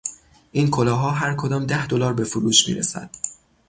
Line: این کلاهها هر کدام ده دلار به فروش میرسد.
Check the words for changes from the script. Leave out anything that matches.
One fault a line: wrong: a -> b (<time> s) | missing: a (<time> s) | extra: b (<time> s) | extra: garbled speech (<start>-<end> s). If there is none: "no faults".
no faults